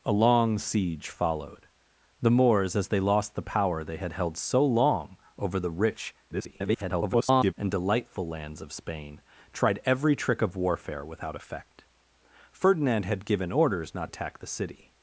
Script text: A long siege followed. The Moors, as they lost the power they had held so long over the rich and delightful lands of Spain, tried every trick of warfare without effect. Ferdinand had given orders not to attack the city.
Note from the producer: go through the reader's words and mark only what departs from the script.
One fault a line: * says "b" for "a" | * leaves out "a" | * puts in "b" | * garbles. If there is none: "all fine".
* garbles
* leaves out "to"